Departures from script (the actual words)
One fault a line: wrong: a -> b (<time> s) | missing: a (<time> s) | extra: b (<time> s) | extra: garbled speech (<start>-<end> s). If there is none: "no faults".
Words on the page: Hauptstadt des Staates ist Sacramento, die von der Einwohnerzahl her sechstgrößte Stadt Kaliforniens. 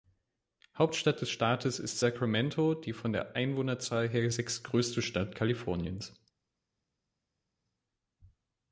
no faults